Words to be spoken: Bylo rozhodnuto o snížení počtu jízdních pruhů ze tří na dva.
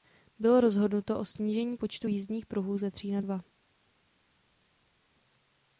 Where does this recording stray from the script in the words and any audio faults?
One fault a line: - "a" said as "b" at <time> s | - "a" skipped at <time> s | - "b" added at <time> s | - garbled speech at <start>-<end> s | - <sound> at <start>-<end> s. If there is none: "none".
none